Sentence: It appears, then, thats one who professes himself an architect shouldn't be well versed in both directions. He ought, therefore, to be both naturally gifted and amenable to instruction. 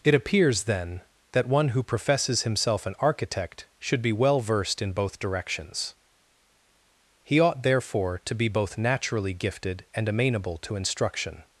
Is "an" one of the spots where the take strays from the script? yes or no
no